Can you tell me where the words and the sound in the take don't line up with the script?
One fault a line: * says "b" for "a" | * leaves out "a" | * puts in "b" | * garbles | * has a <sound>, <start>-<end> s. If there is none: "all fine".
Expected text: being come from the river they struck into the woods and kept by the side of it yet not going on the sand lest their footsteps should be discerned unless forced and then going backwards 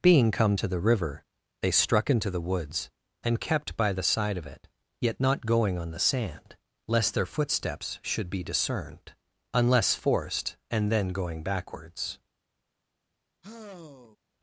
* says "to" for "from"
* has a sigh, 13.4-14.2 s